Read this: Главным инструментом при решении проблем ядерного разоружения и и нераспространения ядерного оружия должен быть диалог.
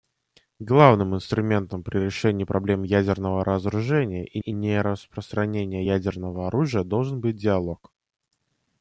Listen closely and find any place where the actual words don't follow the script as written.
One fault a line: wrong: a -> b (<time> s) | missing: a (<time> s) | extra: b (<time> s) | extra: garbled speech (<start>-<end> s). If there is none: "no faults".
no faults